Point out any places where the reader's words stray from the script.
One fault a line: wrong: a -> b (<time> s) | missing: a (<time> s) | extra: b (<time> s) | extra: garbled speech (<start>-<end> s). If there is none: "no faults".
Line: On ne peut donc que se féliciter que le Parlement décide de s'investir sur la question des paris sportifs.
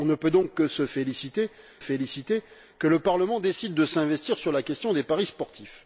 extra: féliciter (1.8 s)